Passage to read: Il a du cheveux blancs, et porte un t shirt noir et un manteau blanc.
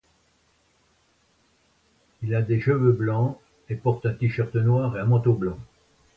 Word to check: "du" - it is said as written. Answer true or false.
false